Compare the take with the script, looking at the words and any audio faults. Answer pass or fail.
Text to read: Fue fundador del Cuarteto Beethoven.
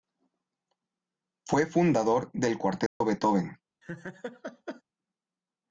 fail